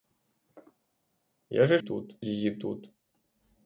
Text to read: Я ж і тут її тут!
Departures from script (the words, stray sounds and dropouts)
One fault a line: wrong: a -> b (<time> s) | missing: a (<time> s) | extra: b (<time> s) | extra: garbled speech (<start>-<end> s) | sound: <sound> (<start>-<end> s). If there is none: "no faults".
no faults